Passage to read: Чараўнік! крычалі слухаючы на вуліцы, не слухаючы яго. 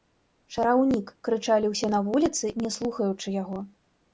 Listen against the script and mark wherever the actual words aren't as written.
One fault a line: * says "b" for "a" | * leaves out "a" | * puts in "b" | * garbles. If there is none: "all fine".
* says "ўсе" for "слухаючы"